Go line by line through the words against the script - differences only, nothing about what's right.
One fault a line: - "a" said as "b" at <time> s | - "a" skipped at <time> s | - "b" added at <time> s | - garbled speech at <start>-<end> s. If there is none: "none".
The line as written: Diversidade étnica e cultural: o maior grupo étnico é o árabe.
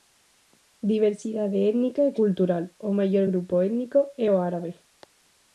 none